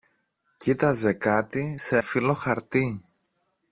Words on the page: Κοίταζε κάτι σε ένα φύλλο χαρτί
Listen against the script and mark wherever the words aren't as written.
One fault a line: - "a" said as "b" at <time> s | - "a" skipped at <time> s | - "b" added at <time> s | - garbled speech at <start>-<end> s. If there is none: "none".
- "ένα" skipped at 2.0 s